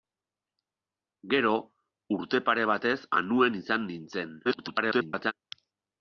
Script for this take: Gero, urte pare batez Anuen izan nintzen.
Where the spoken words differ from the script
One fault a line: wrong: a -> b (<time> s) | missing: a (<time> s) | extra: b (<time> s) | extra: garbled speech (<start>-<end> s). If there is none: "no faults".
extra: garbled speech (4.4-5.3 s)